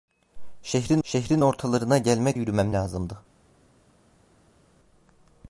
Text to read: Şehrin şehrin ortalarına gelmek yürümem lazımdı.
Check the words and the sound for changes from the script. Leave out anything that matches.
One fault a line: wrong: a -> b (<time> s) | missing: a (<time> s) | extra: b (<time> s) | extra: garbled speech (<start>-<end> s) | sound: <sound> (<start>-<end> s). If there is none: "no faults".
no faults